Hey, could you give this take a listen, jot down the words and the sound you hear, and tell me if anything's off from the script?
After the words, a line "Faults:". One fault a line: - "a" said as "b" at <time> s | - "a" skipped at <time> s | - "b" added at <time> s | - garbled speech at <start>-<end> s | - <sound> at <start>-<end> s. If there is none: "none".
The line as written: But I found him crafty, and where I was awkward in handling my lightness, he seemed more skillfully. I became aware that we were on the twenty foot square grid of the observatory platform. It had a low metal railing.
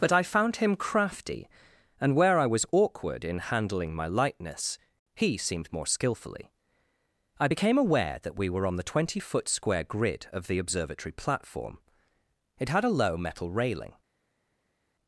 But I found him crafty, and where I was awkward in handling my lightness, he seemed more skillfully. I became aware that we were on the twenty foot square grid of the observatory platform. It had a low metal railing.
Faults:
none